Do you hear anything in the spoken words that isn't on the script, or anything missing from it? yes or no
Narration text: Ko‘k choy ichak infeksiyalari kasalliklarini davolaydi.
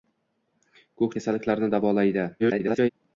yes